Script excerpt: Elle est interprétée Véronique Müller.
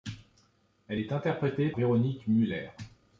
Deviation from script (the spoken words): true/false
false